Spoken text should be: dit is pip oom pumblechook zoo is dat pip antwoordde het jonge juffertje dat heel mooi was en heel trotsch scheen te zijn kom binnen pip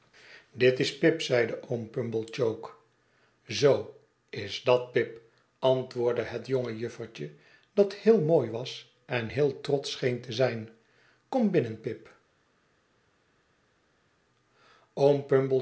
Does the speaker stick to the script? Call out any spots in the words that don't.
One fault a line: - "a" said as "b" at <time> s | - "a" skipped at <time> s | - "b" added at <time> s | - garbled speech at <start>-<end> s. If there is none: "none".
- "zeide" added at 1.2 s